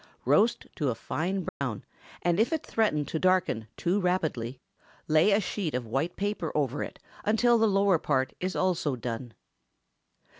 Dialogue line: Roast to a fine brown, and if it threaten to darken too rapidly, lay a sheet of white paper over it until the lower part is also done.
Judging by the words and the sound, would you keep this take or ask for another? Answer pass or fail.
fail